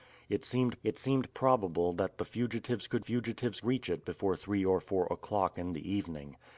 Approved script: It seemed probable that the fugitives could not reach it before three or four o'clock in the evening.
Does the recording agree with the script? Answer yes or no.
no